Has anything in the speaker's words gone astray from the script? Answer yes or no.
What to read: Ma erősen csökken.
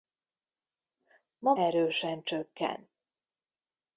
no